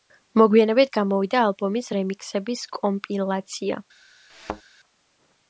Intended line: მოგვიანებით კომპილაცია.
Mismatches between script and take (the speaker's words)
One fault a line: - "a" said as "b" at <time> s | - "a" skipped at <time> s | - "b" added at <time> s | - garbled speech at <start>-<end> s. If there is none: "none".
- "გამოვიდა ალბომის რემიქსების" added at 0.9 s